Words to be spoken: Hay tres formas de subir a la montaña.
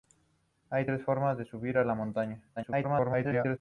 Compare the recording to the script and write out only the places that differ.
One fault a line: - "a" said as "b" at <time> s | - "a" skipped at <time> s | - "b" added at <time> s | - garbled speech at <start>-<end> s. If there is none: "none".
- garbled speech at 2.6-3.6 s